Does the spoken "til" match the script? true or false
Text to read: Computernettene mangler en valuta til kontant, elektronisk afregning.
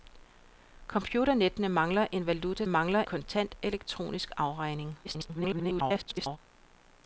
false